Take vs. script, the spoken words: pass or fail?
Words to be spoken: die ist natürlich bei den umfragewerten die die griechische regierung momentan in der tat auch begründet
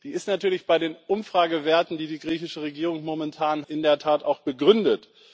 pass